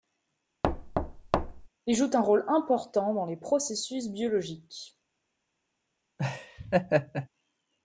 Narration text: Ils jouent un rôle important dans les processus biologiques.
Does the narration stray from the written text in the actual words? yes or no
no